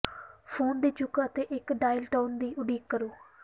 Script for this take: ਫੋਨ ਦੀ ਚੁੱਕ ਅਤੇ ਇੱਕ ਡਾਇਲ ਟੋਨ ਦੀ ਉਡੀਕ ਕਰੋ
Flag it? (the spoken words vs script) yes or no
no